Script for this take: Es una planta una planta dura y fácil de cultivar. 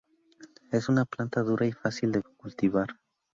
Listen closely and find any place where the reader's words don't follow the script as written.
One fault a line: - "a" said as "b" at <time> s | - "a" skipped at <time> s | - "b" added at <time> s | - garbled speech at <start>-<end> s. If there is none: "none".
- "una planta" skipped at 1.4 s